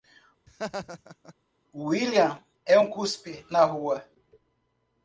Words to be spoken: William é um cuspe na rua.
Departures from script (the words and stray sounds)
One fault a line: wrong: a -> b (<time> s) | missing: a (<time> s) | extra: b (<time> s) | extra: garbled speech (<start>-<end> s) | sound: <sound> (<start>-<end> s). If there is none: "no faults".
sound: laugh (0.5-1.3 s)